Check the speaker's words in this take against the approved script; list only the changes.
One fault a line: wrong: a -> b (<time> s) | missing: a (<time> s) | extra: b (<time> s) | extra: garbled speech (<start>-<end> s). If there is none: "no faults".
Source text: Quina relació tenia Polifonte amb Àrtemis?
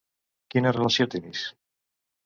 missing: tenia Polifonte amb (1.1 s)